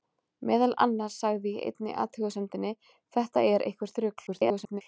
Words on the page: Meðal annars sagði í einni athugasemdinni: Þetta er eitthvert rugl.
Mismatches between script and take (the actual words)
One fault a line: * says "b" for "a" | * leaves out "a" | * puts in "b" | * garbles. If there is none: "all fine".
* garbles